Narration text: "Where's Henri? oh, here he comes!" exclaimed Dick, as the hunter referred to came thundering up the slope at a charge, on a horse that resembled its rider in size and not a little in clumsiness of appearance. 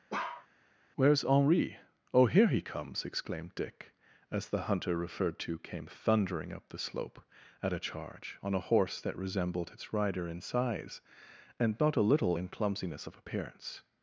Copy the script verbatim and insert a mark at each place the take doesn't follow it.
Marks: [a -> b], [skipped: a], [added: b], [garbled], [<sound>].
[bark] "Where's Henri? oh, here he comes!" exclaimed Dick, as the hunter referred to came thundering up the slope at a charge, on a horse that resembled its rider in size and not a little in clumsiness of appearance.